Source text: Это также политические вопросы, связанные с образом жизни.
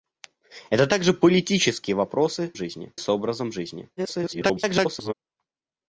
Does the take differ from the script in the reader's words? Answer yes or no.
yes